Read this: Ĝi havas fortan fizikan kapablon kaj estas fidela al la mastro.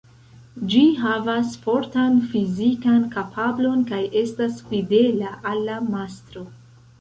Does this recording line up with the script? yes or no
yes